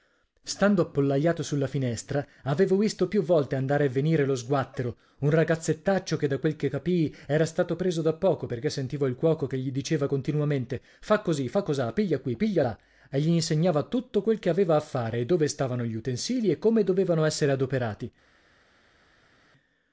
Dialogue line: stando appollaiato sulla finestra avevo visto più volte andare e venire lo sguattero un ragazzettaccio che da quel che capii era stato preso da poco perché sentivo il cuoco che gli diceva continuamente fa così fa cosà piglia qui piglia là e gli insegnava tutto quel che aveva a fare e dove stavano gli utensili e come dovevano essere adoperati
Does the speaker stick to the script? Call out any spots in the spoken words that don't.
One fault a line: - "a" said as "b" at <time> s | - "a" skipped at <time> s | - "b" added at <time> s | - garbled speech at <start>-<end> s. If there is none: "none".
none